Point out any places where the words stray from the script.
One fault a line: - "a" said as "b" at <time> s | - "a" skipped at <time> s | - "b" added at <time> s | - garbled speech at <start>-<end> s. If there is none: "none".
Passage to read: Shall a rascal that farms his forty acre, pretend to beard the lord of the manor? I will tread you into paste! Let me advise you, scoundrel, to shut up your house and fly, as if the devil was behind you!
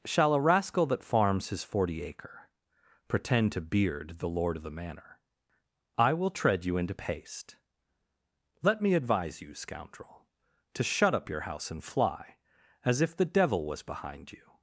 none